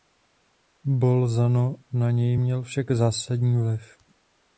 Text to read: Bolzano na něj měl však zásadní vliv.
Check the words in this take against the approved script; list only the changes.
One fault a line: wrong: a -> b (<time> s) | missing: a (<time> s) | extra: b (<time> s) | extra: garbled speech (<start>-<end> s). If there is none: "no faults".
no faults